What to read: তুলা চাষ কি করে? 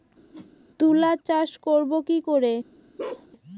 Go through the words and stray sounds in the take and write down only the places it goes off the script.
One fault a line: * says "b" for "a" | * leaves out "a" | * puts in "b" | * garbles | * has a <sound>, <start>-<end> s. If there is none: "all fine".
* has a whoosh, 0.3-0.5 s
* puts in "করব"
* has a bark, 3.0-3.3 s